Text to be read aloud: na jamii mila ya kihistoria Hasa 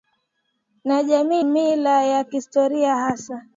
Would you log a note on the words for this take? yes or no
no